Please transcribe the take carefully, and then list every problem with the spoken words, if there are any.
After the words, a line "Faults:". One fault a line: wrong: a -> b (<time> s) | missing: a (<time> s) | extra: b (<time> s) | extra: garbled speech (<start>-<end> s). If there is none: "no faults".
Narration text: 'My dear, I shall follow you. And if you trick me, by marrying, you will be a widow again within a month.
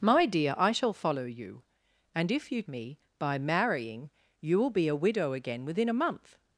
'My dear, I shall follow you. And if you me, by marrying, you will be a widow again within a month.
Faults:
missing: trick (2.6 s)